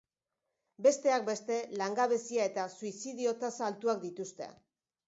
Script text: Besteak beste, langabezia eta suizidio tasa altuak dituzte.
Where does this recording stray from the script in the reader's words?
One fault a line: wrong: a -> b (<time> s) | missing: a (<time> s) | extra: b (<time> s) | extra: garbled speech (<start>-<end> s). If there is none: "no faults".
no faults